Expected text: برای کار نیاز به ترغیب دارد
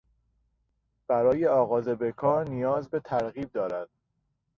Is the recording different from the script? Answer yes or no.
yes